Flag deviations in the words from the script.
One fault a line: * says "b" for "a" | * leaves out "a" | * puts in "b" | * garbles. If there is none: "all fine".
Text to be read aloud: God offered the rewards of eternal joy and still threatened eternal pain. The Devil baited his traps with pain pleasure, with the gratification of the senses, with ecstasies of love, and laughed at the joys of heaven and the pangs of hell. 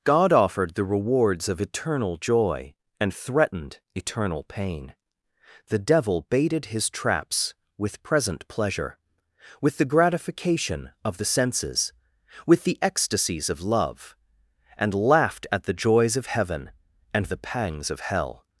* leaves out "still"
* says "present" for "pain"
* puts in "the"